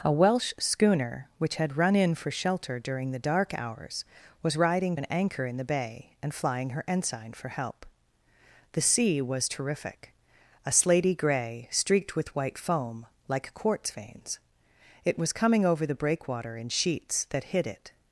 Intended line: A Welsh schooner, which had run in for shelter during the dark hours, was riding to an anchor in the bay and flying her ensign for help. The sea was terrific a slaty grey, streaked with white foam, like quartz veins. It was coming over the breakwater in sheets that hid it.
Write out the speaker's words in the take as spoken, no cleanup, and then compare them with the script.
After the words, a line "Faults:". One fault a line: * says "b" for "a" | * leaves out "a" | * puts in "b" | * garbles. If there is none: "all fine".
A Welsh schooner, which had run in for shelter during the dark hours, was riding an anchor in the bay and flying her ensign for help. The sea was terrific a slaty grey, streaked with white foam, like quartz veins. It was coming over the breakwater in sheets that hid it.
Faults:
* leaves out "to"